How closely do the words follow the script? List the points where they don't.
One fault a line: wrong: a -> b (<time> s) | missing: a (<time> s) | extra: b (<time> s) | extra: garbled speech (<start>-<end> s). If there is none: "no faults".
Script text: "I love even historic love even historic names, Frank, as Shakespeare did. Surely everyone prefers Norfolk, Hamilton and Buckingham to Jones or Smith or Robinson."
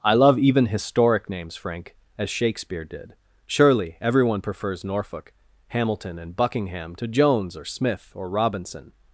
missing: love even historic (1.3 s)